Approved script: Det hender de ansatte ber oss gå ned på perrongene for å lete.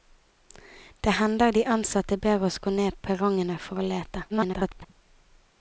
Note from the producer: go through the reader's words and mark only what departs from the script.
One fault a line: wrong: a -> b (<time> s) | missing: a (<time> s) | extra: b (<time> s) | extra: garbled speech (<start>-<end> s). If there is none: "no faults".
missing: på (3.0 s)
extra: garbled speech (4.3-4.9 s)